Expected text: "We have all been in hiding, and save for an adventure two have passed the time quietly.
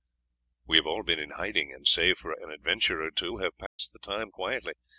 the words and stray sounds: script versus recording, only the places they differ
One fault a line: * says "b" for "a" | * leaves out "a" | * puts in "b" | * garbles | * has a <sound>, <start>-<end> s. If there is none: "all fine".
* puts in "or"
* has a dropout, 3.7-3.8 s